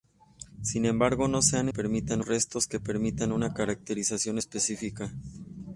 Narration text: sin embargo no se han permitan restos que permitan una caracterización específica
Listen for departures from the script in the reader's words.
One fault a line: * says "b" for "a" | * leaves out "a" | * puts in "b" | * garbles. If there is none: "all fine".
all fine